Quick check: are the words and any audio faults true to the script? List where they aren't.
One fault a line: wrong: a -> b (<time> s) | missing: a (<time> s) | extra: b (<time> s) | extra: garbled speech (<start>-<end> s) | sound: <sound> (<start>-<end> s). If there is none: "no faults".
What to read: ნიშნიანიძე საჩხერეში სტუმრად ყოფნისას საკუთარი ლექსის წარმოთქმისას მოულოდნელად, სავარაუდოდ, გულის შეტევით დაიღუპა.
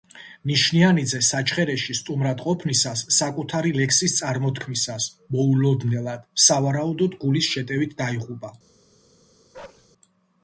sound: bark (9.5-9.9 s)